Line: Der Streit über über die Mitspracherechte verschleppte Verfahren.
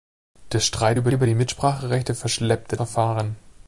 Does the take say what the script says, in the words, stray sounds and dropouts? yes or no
yes